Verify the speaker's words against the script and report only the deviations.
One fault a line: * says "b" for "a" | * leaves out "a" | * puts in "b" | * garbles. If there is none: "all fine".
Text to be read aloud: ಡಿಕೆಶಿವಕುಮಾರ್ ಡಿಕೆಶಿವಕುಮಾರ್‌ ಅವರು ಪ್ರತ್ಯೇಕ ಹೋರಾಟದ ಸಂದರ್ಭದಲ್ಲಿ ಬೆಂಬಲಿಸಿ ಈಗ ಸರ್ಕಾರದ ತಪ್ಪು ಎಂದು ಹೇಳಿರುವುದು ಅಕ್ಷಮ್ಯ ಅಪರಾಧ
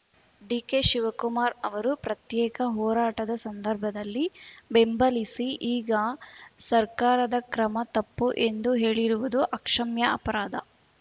* leaves out "ಡಿಕೆಶಿವಕುಮಾರ್"
* puts in "ಕ್ರಮ"